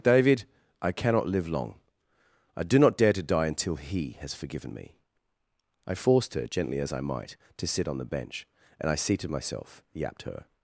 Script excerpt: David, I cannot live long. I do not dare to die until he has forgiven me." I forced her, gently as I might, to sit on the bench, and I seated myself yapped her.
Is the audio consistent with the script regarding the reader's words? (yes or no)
yes